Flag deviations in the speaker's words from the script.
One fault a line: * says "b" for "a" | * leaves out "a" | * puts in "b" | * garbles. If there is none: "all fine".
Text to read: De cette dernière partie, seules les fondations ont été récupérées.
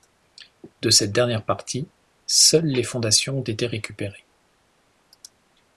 all fine